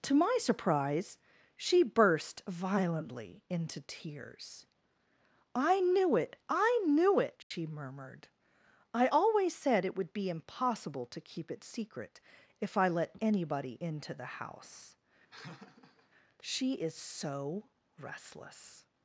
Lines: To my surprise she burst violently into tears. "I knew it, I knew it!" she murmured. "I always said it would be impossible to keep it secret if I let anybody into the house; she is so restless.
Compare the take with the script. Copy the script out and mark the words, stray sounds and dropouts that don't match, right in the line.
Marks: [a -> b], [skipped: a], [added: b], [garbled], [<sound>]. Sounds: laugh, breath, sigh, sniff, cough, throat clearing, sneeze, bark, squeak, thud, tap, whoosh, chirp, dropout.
To my surprise she burst violently into tears. "I knew it, I knew it!" she [dropout] murmured. "I always said it would be impossible to keep it secret if I let anybody into the house; [laugh] she is so restless.